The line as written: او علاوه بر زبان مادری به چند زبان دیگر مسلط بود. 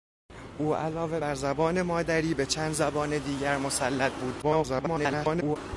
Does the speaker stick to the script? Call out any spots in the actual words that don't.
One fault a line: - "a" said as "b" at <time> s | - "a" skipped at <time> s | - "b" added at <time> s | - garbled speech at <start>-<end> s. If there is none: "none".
- garbled speech at 4.4-5.6 s